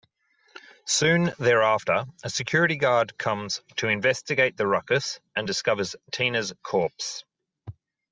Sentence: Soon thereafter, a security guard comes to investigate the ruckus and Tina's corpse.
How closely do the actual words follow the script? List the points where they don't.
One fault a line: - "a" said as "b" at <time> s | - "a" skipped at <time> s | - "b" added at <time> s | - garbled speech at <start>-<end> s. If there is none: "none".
- "discovers" added at 5.5 s